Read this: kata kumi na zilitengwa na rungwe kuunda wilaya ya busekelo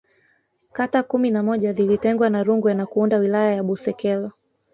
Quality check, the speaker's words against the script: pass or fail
fail